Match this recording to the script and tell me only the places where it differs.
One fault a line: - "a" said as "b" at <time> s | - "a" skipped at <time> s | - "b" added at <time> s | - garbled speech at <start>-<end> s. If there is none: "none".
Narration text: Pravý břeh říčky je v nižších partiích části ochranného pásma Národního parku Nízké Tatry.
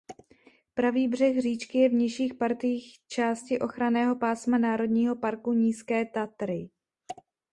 none